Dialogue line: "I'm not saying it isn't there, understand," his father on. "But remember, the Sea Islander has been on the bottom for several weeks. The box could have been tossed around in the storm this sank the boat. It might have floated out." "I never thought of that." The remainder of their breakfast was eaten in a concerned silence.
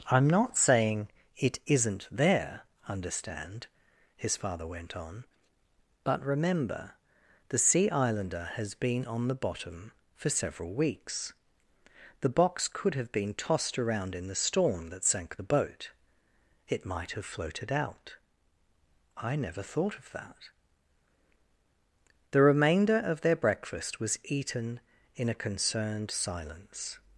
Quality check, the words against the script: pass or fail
fail